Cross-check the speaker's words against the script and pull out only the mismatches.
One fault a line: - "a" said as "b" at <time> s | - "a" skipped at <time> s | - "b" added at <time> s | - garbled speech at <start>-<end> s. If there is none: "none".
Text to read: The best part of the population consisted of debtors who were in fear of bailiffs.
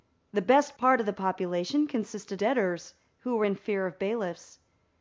- "of" skipped at 2.4 s